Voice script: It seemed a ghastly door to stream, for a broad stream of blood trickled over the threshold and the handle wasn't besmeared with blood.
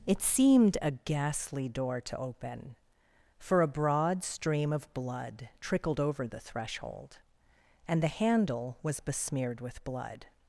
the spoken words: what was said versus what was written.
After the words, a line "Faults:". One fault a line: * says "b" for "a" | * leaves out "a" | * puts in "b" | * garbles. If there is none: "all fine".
It seemed a ghastly door to open, for a broad stream of blood trickled over the threshold and the handle was besmeared with blood.
Faults:
* says "open" for "stream"
* says "was" for "wasn't"